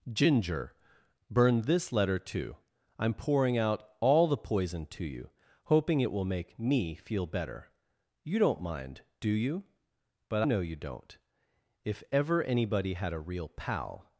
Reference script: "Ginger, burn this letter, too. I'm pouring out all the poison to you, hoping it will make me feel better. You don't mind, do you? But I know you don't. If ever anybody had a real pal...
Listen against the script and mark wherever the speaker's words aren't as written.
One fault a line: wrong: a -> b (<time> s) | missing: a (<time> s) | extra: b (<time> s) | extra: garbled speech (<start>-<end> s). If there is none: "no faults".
missing: I (10.4 s)